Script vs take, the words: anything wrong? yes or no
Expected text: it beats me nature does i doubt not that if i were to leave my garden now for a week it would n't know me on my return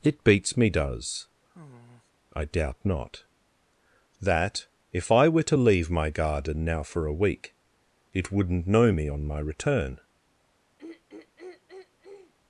yes